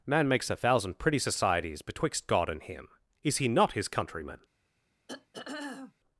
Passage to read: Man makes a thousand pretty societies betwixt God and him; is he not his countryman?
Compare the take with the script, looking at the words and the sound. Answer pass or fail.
fail